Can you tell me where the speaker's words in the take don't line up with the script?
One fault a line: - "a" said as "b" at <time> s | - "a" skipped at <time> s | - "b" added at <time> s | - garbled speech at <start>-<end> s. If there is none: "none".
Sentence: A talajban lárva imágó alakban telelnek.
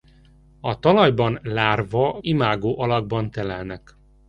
none